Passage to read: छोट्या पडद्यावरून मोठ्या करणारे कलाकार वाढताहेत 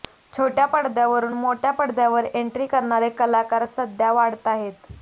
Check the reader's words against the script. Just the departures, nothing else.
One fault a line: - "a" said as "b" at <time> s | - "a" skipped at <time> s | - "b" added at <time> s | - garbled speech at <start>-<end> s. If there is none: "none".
- "पडद्यावर एंट्री" added at 1.7 s
- "सध्या" added at 3.7 s